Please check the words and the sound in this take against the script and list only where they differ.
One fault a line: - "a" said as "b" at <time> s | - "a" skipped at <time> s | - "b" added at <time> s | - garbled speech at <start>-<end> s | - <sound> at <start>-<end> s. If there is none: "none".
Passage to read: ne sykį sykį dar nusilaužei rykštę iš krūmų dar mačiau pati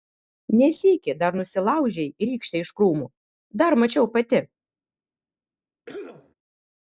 - "sykį" skipped at 1.1 s
- cough at 5.9-6.3 s